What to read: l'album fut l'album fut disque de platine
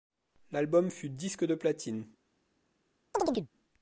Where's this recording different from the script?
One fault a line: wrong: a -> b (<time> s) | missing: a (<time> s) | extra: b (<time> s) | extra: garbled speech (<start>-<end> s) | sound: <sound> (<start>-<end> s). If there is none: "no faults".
missing: l'album fut (1.1 s)
sound: chirp (3.1-3.5 s)